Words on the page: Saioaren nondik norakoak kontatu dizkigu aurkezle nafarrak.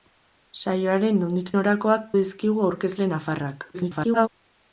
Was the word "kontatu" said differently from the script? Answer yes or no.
yes